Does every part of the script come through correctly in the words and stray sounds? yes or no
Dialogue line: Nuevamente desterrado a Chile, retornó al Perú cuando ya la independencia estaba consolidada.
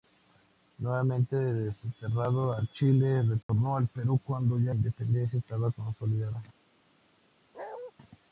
no